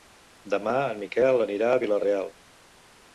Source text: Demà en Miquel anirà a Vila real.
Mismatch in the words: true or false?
false